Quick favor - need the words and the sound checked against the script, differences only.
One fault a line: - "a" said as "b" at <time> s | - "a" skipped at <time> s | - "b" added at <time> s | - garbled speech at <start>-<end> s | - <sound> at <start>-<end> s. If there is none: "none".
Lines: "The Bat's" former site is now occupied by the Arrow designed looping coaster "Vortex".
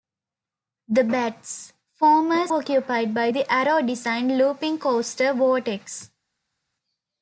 - "site is now" skipped at 2.5 s